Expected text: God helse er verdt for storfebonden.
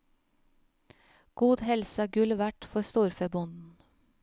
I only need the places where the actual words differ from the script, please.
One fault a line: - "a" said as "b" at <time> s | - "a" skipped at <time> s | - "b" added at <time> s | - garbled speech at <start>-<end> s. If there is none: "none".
- "gull" added at 2.2 s